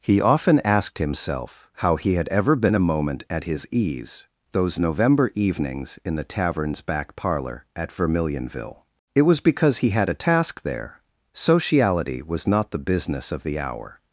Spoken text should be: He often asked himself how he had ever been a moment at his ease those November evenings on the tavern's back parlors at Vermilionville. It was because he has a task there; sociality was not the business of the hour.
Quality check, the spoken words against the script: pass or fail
fail